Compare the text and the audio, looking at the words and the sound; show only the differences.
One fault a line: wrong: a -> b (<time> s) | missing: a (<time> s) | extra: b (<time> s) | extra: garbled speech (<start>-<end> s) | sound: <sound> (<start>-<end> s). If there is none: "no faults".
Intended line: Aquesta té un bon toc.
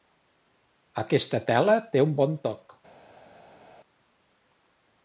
extra: tela (1.5 s)